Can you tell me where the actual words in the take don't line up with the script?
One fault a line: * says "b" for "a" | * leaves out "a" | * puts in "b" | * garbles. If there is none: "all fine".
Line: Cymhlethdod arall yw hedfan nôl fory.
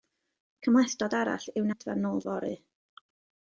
all fine